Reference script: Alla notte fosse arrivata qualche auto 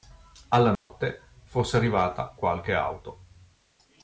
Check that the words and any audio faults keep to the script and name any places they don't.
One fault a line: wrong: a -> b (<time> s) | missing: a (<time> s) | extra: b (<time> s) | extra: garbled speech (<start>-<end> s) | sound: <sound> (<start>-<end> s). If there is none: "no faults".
sound: dropout (0.8-0.9 s)